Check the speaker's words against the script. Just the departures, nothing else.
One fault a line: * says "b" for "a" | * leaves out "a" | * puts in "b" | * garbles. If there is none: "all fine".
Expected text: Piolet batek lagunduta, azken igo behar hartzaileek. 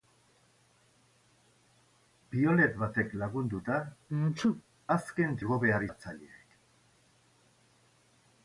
all fine